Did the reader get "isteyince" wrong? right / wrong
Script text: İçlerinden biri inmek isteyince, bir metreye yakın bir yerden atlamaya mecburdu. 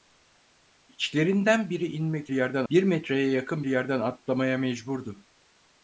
wrong